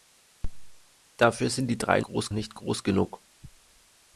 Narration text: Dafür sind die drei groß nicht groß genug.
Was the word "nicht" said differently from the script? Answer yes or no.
no